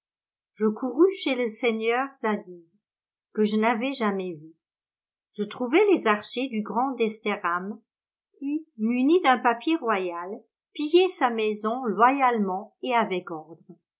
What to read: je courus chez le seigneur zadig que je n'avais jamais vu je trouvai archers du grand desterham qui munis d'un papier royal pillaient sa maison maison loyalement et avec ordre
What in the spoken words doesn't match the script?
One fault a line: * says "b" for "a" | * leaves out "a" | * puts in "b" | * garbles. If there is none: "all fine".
* puts in "les"
* leaves out "maison"